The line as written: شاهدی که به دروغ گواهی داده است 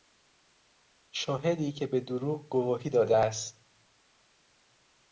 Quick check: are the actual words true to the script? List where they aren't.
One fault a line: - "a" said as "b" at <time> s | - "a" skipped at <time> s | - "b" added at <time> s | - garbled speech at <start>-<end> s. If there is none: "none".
none